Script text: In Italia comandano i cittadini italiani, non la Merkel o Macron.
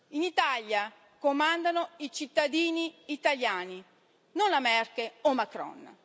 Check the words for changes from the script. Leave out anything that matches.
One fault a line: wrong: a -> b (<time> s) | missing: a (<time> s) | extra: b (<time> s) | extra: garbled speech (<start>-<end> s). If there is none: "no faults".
no faults